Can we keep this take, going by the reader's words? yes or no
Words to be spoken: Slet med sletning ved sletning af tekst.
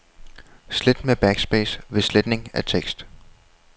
no